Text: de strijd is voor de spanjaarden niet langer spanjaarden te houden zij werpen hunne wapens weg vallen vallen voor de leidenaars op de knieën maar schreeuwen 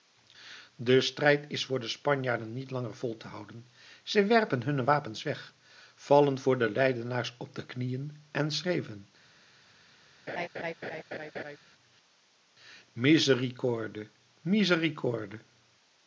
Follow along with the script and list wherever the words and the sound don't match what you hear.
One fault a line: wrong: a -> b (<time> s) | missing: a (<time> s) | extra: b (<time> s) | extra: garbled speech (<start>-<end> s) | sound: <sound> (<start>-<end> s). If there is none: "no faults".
wrong: spanjaarden -> vol (2.9 s)
missing: vallen (6.4 s)
wrong: maar -> en (8.3 s)
sound: laugh (10.3-11.6 s)